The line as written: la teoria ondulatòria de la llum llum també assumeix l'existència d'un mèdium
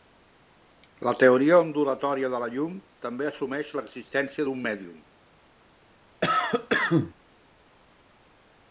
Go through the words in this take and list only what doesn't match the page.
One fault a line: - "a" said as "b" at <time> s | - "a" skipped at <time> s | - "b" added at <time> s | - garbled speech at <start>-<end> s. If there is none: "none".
- "llum" skipped at 2.8 s